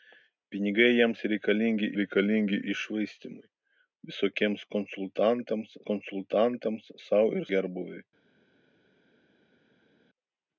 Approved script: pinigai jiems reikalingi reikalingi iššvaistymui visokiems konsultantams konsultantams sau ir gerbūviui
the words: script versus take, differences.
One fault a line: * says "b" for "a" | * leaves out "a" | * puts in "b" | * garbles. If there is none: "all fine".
all fine